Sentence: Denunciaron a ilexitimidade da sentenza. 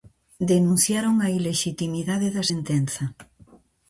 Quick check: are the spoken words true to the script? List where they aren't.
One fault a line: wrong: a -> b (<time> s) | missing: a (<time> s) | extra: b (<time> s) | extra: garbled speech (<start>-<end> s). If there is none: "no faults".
no faults